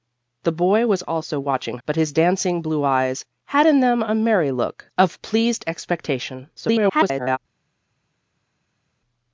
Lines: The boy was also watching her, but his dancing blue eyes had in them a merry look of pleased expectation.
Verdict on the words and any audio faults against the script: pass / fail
fail